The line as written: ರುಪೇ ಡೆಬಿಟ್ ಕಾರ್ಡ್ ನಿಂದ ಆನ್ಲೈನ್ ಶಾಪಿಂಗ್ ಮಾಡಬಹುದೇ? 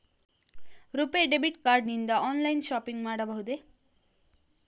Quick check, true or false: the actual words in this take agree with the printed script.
true